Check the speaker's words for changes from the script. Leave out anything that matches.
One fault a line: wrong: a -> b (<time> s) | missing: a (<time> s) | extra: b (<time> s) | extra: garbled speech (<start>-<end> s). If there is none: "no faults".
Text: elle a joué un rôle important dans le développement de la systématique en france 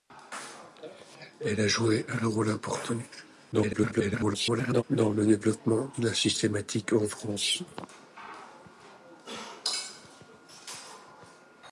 extra: garbled speech (3.5-4.8 s)